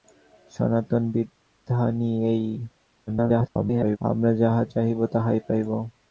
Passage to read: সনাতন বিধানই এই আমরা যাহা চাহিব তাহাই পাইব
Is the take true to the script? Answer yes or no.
no